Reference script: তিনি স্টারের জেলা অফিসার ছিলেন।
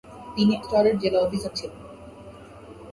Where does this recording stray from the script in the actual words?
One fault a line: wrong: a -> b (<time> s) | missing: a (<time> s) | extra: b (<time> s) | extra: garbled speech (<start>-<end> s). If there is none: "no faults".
no faults